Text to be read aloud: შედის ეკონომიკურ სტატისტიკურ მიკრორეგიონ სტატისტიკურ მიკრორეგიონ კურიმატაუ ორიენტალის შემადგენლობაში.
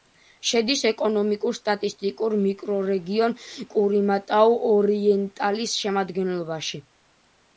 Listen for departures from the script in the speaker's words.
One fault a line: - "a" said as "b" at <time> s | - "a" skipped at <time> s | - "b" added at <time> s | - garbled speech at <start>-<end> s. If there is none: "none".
- "სტატისტიკურ მიკრორეგიონ" skipped at 3.4 s